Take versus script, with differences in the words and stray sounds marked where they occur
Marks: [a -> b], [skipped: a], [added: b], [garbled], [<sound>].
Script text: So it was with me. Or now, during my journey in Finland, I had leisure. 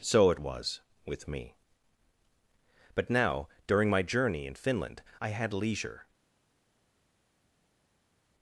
So it was with me. [Or -> But] now, during my journey in Finland, I had leisure.